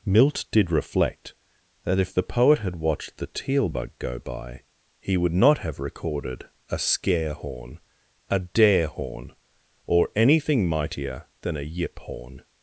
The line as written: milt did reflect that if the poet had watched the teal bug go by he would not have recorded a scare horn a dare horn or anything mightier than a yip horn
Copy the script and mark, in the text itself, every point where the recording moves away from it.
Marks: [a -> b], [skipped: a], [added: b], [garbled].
milt did reflect that if the poet had watched the teal bug go by he would not have recorded a scare horn a dare horn or anything mightier than a yip horn